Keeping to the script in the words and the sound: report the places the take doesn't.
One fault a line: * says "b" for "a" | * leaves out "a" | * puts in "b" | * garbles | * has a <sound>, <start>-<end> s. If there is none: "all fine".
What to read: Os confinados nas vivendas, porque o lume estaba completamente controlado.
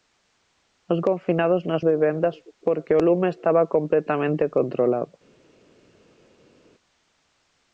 all fine